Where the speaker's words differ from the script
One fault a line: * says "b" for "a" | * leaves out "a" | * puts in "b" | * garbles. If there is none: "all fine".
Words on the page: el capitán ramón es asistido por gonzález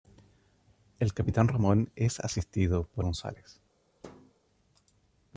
all fine